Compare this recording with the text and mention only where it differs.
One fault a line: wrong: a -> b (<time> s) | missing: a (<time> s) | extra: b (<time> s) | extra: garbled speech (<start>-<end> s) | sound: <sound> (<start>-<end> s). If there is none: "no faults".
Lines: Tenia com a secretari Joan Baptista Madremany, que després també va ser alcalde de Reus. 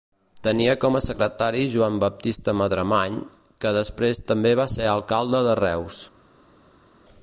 no faults